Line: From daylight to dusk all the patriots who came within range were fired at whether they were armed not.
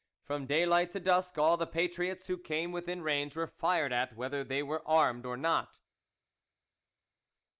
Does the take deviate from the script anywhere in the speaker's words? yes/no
yes